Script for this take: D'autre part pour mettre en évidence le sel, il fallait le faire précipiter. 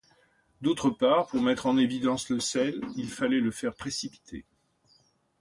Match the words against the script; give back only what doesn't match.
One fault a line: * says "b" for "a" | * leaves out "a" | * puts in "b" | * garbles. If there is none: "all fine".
all fine